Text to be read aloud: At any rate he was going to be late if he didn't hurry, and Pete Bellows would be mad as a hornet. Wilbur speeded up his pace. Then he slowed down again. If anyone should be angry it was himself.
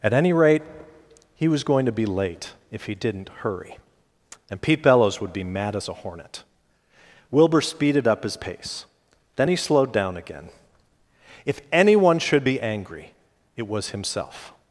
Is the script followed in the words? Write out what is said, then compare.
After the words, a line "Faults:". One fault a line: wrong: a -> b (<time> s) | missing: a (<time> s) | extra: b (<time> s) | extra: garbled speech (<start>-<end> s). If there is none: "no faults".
At any rate he was going to be late if he didn't hurry, and Pete Bellows would be mad as a hornet. Wilbur speeded up his pace. Then he slowed down again. If anyone should be angry it was himself.
Faults:
no faults